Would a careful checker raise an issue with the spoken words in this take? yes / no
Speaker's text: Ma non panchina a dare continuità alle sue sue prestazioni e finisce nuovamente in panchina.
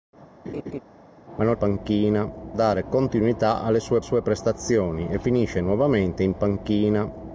no